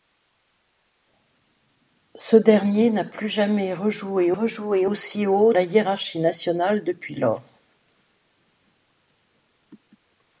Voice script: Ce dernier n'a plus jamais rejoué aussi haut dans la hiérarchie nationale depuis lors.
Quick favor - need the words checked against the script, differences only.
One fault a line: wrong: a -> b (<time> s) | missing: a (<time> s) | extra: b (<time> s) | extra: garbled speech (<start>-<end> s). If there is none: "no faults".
extra: rejoué (4.3 s)
missing: dans (5.5 s)